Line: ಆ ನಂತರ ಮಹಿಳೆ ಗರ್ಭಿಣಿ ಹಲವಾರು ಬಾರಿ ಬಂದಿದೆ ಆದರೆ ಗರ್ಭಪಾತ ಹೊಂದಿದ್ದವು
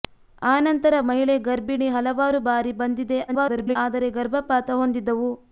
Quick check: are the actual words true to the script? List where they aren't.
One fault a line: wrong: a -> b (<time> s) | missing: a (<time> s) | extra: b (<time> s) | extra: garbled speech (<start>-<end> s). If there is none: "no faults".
extra: garbled speech (3.3-3.8 s)